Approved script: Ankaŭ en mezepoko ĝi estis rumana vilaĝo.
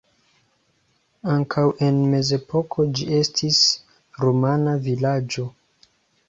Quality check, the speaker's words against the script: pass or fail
pass